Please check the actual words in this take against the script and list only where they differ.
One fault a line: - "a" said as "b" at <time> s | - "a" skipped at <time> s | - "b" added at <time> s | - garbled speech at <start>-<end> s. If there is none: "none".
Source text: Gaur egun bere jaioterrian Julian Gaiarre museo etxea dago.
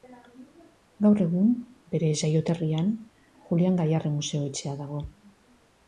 none